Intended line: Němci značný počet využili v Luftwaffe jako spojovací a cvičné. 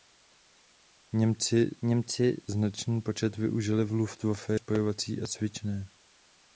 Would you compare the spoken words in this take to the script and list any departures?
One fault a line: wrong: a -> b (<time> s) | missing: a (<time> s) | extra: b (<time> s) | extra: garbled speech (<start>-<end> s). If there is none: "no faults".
extra: němci (1.8 s)
missing: jako (4.5 s)